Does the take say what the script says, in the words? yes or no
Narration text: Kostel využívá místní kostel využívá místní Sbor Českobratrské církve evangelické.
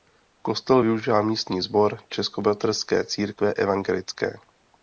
no